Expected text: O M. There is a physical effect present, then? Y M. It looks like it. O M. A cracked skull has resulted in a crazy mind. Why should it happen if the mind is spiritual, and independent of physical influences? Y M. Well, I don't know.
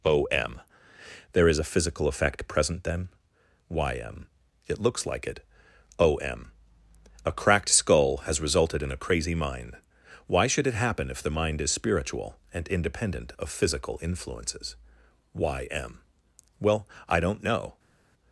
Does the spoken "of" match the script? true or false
true